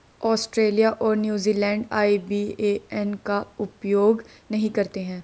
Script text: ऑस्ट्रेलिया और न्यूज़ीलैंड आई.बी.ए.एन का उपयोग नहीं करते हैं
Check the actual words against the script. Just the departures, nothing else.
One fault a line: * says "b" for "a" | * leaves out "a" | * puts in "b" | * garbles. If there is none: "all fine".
all fine